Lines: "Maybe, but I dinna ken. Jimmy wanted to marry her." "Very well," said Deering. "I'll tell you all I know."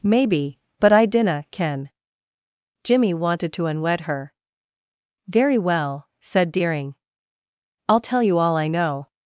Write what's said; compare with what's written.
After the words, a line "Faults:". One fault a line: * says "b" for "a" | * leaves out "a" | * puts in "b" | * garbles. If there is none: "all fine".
"Maybe, but I dinna ken. Jimmy wanted to unwed her." "Very well," said Deering. "I'll tell you all I know."
Faults:
* says "unwed" for "marry"